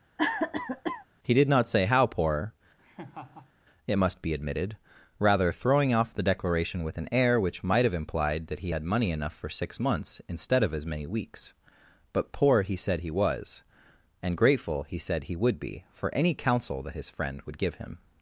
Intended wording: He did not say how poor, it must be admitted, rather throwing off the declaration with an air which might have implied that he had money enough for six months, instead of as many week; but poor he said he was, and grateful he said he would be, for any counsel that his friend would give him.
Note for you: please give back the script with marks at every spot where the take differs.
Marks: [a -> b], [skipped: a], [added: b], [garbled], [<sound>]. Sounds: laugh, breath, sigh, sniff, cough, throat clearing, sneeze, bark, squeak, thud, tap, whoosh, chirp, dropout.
[cough] He did not say how poor, [laugh] it must be admitted, rather throwing off the declaration with an air which might have implied that he had money enough for six months, instead of as many [week; -> weeks] but poor he said he was, and grateful he said he would be, for any counsel that his friend would give him.